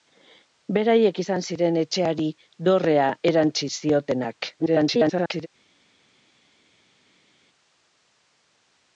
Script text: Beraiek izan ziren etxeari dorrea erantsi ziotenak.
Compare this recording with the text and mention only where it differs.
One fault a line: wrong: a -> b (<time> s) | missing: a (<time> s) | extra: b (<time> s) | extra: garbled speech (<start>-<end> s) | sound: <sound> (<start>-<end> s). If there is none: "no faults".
extra: garbled speech (4.6-5.5 s)